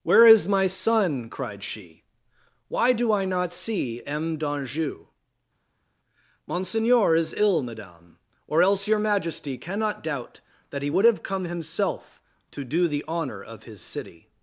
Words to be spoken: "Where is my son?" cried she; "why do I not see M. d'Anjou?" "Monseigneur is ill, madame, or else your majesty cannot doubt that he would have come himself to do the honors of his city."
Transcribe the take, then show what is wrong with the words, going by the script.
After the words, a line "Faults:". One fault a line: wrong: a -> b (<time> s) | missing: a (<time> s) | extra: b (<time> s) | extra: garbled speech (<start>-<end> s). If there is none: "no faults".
"Where is my son?" cried she; "why do I not see M. d'Anjou?" "Monseigneur is ill, madame, or else your majesty cannot doubt that he would have come himself to do the honor of his city."
Faults:
wrong: honors -> honor (13.1 s)